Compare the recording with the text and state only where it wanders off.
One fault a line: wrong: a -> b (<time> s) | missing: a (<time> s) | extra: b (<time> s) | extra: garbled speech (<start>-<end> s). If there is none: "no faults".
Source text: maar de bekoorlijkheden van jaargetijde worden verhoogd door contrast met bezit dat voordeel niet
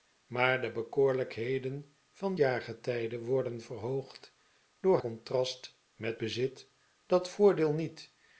no faults